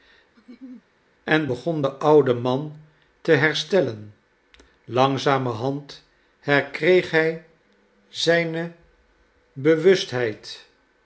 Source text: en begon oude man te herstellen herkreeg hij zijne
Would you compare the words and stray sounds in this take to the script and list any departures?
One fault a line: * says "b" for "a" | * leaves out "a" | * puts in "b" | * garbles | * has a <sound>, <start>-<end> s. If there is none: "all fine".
* has a laugh, 0.4-0.9 s
* puts in "de"
* puts in "langzamerhand"